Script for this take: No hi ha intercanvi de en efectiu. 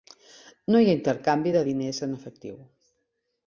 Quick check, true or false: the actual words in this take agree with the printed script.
false